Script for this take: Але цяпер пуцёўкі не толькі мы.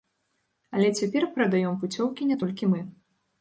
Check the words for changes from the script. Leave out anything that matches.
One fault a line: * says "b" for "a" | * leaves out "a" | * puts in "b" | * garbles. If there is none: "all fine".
* puts in "прадаём"